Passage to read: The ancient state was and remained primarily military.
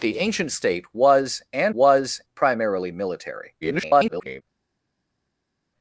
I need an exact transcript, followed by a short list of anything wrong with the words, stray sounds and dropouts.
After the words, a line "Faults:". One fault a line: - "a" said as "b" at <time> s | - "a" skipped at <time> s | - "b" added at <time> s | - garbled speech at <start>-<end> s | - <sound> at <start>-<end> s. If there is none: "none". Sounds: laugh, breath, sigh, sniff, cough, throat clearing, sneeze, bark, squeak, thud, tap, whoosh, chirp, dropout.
The ancient state was and was primarily military. [garbled]
Faults:
- "remained" said as "was" at 1.7 s
- garbled speech at 3.6-4.4 s